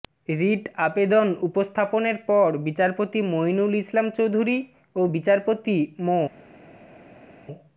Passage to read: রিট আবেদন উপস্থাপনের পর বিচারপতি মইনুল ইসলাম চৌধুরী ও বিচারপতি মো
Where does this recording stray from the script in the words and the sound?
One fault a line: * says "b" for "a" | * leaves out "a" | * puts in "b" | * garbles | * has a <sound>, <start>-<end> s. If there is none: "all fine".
all fine